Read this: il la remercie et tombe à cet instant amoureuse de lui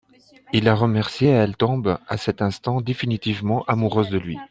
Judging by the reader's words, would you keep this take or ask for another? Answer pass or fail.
fail